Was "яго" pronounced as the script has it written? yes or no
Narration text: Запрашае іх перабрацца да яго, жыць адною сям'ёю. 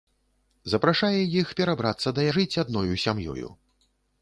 no